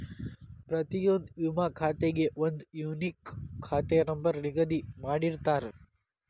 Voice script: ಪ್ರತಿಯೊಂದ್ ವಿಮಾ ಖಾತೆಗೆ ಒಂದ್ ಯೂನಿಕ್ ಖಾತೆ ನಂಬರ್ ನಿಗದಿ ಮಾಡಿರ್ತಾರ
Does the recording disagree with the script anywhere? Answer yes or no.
no